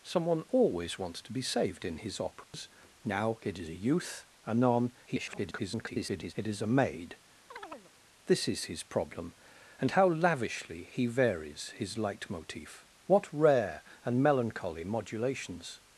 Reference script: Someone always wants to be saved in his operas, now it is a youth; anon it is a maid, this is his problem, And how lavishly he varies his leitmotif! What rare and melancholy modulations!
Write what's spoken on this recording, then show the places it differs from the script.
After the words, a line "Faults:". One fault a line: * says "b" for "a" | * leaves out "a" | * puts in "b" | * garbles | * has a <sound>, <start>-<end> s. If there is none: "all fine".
Someone always wants to be saved in his operas, now it is a youth; anon [garbled] it is a maid, this is his problem, And how lavishly he varies his leitmotif! What rare and melancholy modulations!
Faults:
* has a dropout, 2.4-2.5 s
* garbles
* has a chirp, 7.5-7.9 s